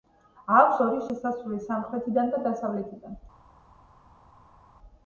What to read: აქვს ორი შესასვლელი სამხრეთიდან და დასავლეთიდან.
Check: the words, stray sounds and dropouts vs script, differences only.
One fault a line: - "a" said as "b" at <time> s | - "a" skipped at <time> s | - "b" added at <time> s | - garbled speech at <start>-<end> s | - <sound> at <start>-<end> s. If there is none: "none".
none